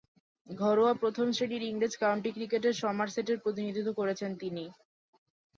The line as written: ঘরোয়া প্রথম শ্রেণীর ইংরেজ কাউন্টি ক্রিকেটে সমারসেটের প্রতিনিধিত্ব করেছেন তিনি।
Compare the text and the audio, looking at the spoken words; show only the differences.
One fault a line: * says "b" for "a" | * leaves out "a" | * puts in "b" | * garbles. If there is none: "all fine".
all fine